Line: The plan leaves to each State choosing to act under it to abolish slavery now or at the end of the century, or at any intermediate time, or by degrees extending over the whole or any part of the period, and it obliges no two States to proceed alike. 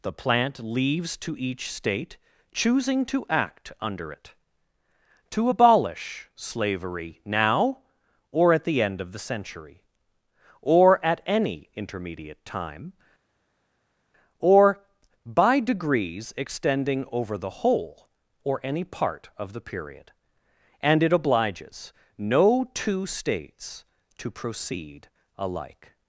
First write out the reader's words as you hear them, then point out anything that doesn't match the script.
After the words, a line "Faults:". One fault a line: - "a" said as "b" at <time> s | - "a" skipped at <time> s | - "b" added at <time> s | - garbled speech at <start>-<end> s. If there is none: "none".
The plant leaves to each State choosing to act under it to abolish slavery now or at the end of the century, or at any intermediate time, or by degrees extending over the whole or any part of the period, and it obliges no two States to proceed alike.
Faults:
- "plan" said as "plant" at 0.1 s